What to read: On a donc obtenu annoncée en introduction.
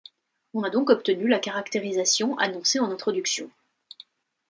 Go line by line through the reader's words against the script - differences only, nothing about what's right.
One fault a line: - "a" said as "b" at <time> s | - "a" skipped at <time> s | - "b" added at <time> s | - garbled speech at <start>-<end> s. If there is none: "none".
- "la caractérisation" added at 1.3 s